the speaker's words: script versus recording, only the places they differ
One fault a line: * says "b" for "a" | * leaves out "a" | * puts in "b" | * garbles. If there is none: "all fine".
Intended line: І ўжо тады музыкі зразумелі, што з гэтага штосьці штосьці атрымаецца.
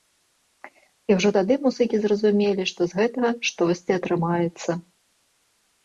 * leaves out "штосьці"